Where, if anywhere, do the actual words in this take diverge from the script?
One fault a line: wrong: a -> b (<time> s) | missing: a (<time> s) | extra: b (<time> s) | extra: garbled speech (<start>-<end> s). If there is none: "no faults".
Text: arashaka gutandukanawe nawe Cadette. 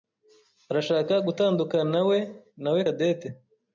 no faults